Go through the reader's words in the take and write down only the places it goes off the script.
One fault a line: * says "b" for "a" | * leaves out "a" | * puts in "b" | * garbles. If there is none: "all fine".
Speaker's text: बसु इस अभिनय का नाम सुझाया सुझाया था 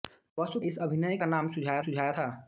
all fine